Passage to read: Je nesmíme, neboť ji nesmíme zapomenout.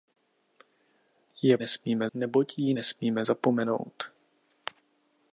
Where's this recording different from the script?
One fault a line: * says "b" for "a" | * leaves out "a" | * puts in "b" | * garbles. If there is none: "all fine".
all fine